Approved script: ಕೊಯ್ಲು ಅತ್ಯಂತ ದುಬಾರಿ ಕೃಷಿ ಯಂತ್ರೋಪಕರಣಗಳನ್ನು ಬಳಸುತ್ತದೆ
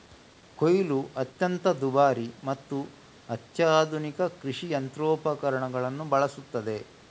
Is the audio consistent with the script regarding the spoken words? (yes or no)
no